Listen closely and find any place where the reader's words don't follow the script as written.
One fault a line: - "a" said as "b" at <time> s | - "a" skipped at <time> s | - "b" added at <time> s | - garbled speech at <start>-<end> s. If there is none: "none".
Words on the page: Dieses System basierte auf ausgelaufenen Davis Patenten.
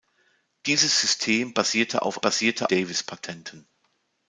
- "ausgelaufenen" said as "basierte" at 2.2 s